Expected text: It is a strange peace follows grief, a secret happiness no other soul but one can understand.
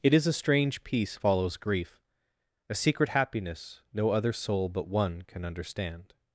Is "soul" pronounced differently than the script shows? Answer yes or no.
no